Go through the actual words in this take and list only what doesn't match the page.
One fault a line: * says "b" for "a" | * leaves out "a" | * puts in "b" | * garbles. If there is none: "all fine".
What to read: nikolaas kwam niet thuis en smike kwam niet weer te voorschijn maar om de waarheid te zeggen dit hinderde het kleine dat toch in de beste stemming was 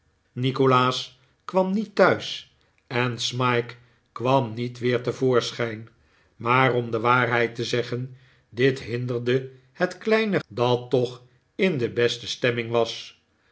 all fine